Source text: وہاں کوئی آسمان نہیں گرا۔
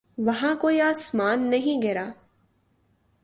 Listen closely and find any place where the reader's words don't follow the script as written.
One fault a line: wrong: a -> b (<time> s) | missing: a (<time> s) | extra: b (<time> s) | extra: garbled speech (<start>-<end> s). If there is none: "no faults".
no faults